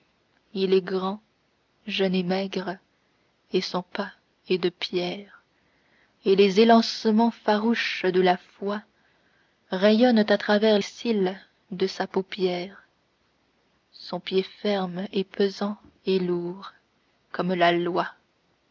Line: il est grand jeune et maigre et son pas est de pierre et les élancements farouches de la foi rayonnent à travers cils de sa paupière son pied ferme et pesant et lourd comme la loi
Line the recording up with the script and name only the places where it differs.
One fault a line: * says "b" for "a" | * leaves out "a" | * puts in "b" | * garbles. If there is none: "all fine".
all fine